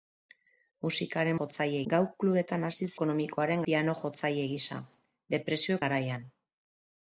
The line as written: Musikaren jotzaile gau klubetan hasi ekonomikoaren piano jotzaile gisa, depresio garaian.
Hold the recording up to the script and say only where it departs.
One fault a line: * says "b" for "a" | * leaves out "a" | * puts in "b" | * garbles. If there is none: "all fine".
all fine